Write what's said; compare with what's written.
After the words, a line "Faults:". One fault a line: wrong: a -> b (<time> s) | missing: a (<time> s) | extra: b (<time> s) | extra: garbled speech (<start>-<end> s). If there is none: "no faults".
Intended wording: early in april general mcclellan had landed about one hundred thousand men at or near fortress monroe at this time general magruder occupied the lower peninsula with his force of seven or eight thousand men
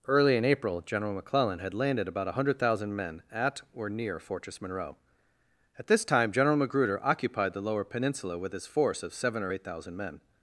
early in april general mcclellan had landed about one hundred thousand men at or near fortress monroe at this time general magruder occupied the lower peninsula with his force of seven or eight thousand men
Faults:
no faults